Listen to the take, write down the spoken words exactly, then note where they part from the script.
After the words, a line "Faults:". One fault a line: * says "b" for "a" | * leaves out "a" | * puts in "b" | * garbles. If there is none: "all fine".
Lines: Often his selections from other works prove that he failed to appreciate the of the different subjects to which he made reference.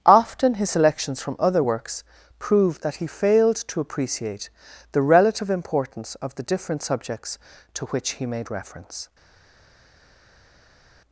Often his selections from other works prove that he failed to appreciate the relative importance of the different subjects to which he made reference.
Faults:
* puts in "relative importance"